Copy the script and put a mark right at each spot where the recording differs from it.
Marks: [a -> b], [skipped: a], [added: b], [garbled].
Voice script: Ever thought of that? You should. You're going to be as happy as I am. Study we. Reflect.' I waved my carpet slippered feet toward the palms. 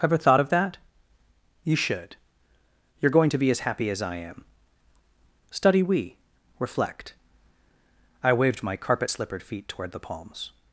Ever thought of that? You should. You're going to be as happy as I am. Study we. Reflect.' I waved my carpet slippered feet toward the palms.